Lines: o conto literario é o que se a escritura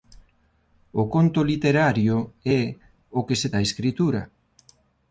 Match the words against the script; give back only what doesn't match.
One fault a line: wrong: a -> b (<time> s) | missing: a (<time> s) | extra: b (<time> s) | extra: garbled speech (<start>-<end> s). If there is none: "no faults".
no faults